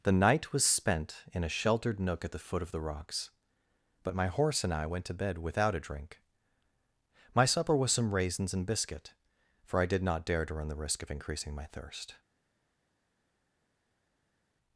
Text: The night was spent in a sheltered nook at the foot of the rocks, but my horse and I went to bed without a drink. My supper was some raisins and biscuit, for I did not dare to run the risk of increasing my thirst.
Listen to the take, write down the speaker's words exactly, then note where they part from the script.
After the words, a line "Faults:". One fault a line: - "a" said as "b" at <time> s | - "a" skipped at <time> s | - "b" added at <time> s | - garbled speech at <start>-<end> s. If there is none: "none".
The night was spent in a sheltered nook at the foot of the rocks, but my horse and I went to bed without a drink. My supper was some raisins and biscuit, for I did not dare to run the risk of increasing my thirst.
Faults:
none